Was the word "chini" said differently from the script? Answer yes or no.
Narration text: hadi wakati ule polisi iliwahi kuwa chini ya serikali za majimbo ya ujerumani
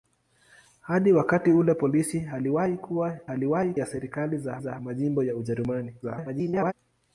yes